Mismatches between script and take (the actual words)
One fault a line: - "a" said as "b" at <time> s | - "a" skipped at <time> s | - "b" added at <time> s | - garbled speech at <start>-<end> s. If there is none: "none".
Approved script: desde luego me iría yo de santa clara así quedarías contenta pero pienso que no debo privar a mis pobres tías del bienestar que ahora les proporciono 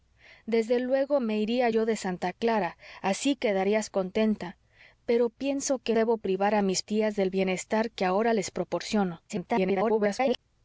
- "no" skipped at 6.0 s
- "pobres" skipped at 6.8 s
- garbled speech at 9.3-10.4 s